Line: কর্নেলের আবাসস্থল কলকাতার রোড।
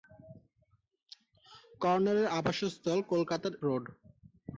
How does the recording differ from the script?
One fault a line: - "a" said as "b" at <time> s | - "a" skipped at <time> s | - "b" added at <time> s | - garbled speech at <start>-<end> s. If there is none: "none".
none